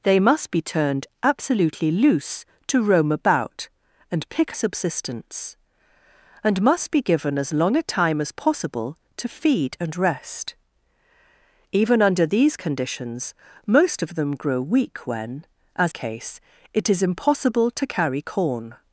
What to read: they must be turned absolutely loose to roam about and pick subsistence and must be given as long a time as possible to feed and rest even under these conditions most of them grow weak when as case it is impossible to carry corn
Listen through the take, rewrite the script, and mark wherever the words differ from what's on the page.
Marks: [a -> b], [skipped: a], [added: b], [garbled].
they must be turned absolutely loose to roam about and pick subsistence and must be given as long a time as possible to feed and rest even under these conditions most of them grow weak when as case it is impossible to carry corn